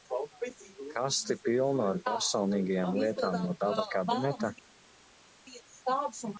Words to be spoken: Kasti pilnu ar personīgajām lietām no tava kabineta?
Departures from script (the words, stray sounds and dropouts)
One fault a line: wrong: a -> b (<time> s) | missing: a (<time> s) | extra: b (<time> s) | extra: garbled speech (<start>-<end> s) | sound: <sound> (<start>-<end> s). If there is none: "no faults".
no faults